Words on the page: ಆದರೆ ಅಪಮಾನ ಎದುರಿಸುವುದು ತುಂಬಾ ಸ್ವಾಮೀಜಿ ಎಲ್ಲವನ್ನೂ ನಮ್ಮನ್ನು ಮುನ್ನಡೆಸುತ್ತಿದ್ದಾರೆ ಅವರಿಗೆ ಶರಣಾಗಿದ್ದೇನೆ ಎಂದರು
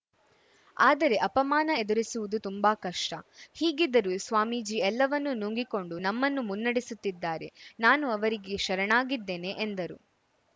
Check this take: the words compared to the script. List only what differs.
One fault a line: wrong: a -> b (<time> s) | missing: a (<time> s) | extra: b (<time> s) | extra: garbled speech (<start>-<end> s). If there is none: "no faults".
extra: ಕಷ್ಟ ಹೀಗಿದ್ದರೂ (2.8 s)
extra: ನುಂಗಿಕೊಂಡು (5.3 s)
extra: ನಾನು (7.8 s)